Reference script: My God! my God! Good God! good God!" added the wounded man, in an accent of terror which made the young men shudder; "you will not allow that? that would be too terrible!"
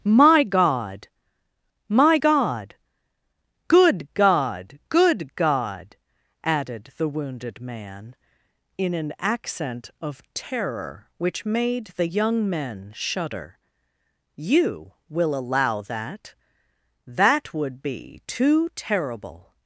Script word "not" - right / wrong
wrong